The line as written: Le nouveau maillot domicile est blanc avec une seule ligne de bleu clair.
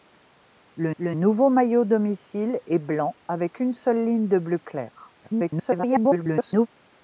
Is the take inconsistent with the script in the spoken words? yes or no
yes